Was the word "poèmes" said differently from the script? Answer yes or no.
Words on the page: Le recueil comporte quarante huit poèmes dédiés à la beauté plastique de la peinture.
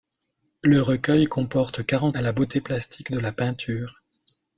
yes